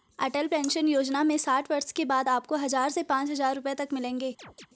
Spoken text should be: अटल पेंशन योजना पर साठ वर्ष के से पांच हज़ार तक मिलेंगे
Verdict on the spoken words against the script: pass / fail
fail